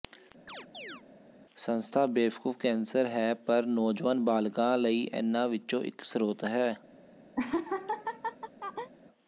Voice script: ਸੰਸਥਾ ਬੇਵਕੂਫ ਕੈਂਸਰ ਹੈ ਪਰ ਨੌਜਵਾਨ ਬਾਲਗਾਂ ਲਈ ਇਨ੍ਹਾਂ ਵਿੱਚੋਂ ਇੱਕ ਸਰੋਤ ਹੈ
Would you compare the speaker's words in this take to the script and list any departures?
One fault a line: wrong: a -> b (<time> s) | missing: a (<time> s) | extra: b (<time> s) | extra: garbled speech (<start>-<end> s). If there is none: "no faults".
no faults